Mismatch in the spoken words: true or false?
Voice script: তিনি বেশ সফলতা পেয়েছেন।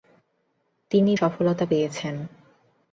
true